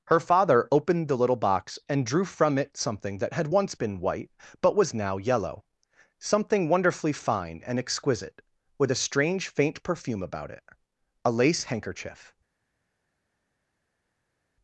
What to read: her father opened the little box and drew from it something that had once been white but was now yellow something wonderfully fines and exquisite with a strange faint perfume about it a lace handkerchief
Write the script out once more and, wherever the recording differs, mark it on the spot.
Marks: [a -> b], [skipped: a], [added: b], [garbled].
her father opened the little box and drew from it something that had once been white but was now yellow something wonderfully [fines -> fine] and exquisite with a strange faint perfume about it a lace handkerchief